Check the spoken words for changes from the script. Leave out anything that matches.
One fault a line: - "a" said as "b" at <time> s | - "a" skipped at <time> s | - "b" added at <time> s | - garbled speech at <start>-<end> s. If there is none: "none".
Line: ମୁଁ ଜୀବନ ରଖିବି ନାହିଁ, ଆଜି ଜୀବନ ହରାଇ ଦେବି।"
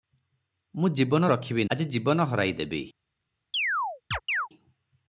- "ନାହିଁ" skipped at 1.6 s